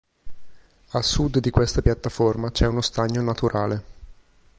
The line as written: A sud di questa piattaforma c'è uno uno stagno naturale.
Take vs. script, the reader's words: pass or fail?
fail